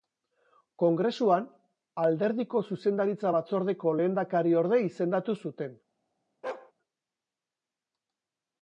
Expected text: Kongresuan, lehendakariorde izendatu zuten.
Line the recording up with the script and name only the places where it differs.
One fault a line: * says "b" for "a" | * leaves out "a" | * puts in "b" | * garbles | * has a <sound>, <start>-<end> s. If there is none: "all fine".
* puts in "alderdiko Zuzendaritza batzordeko"
* has a bark, 6.4-6.7 s